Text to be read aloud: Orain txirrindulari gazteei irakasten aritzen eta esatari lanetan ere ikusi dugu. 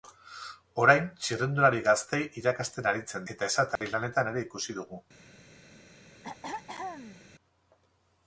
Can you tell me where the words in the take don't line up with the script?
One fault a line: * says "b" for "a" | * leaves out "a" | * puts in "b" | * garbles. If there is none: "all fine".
all fine